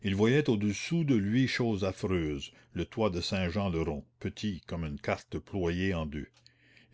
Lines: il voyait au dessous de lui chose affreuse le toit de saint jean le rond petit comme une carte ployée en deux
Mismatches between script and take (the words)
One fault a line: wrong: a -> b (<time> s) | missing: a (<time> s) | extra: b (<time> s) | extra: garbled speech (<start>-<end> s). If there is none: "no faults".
no faults